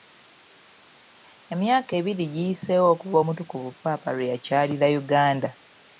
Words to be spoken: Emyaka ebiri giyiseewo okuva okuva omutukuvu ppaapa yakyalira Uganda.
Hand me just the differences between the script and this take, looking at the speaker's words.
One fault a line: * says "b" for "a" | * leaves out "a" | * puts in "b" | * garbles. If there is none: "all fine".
* leaves out "okuva"
* puts in "lwe"